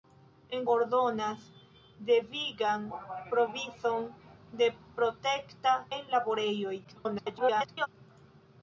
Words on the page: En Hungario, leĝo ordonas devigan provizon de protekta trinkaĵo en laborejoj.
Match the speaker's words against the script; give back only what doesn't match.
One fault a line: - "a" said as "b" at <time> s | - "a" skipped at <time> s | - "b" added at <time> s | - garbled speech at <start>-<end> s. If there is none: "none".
- "Hungario leĝo" skipped at 0.6 s
- "trinkaĵo" skipped at 5.8 s
- garbled speech at 6.8-7.9 s